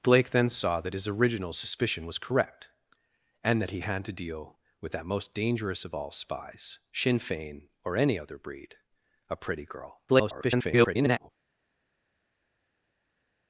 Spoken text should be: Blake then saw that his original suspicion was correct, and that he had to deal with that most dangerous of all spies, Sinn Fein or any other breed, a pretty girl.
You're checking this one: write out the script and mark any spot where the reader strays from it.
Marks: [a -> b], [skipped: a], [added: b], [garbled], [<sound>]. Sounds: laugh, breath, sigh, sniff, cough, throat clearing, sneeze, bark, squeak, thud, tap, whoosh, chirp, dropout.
Blake then saw that his original suspicion was correct, and that he had to deal with that most dangerous of all spies, Sinn Fein or any other breed, a pretty girl. [garbled]